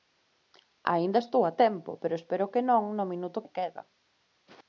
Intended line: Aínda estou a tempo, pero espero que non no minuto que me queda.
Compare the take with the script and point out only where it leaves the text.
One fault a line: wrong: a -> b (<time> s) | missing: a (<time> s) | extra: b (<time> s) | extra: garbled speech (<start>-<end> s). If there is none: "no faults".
missing: que (3.4 s)